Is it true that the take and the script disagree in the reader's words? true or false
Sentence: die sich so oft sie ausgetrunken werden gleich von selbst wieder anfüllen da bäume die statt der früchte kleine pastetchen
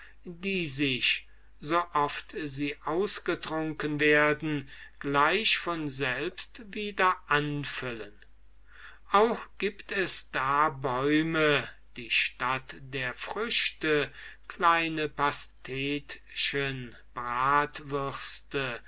true